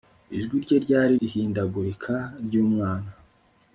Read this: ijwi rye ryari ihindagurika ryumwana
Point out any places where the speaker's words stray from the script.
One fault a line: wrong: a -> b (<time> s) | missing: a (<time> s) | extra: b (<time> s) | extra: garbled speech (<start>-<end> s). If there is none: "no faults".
no faults